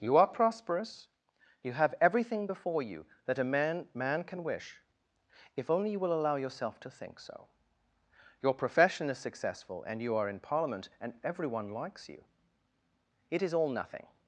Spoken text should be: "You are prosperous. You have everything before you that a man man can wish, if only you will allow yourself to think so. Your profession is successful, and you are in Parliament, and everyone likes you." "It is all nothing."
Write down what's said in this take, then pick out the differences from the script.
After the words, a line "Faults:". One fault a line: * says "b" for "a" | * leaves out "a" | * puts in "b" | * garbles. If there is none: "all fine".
"You are prosperous. You have everything before you that a man man can wish, if only you will allow yourself to think so. Your profession is successful, and you are in Parliament, and everyone likes you." "It is all nothing."
Faults:
all fine